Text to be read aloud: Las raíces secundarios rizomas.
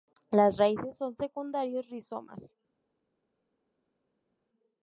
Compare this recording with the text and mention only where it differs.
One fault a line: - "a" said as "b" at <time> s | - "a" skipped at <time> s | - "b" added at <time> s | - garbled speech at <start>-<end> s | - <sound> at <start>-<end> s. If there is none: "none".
- "son" added at 1.0 s